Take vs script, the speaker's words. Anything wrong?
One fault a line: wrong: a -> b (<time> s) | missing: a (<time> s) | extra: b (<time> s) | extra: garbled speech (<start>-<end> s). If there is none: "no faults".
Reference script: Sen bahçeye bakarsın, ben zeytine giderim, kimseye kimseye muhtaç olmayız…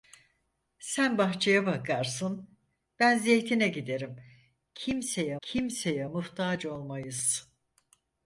no faults